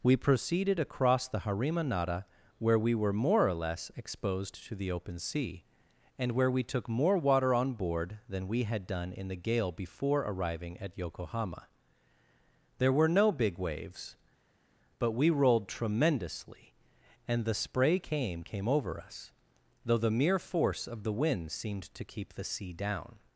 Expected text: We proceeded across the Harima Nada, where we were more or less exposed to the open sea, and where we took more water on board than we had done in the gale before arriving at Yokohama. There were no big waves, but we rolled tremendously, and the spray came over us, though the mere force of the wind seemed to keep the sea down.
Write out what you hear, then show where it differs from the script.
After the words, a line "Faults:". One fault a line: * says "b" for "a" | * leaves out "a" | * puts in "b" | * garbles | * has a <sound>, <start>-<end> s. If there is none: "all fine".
We proceeded across the Harima Nada, where we were more or less exposed to the open sea, and where we took more water on board than we had done in the gale before arriving at Yokohama. There were no big waves, but we rolled tremendously, and the spray came came over us, though the mere force of the wind seemed to keep the sea down.
Faults:
* puts in "came"